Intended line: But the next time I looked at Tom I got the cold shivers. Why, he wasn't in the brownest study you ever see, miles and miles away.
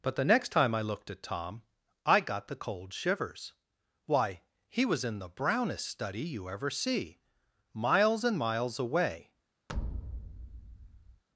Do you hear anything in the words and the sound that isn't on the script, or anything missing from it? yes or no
yes